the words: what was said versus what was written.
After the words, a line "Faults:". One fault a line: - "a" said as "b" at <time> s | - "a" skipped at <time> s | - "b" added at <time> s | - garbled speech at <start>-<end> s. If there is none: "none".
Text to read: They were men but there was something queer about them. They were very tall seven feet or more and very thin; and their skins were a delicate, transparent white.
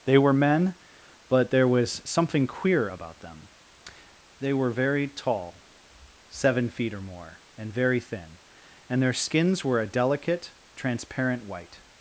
They were men but there was something queer about them. They were very tall seven feet or more and very thin; and their skins were a delicate, transparent white.
Faults:
none